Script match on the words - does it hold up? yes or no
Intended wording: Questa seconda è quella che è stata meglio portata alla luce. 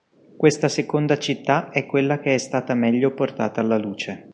no